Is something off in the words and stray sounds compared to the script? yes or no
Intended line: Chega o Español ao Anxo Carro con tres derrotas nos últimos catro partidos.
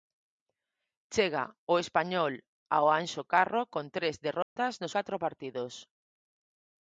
yes